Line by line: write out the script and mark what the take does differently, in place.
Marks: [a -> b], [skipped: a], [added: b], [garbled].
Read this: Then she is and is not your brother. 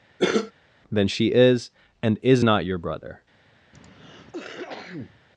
Then she is and is not your brother.